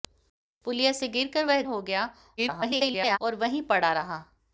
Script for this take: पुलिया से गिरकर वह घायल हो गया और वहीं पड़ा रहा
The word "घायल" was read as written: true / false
false